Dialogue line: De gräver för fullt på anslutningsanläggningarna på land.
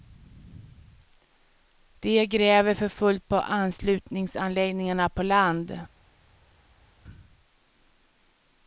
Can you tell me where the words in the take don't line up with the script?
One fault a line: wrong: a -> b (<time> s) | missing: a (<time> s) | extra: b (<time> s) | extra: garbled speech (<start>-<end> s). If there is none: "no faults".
no faults